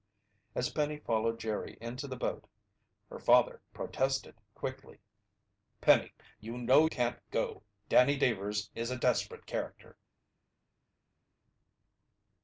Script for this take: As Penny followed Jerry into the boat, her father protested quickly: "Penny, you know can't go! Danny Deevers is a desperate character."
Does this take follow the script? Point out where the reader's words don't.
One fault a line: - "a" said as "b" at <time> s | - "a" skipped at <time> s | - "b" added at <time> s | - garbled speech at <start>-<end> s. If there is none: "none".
none